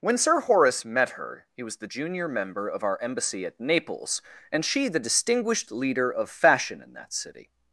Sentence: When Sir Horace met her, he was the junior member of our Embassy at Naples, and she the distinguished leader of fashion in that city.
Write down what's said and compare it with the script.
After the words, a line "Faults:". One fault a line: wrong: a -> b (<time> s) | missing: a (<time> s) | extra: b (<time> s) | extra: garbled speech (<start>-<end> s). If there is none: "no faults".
When Sir Horace met her, he was the junior member of our Embassy at Naples, and she the distinguished leader of fashion in that city.
Faults:
no faults